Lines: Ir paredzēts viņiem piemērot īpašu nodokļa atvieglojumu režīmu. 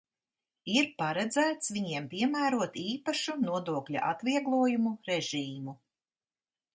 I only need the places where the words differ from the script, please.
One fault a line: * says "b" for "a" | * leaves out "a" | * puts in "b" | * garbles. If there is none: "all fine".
all fine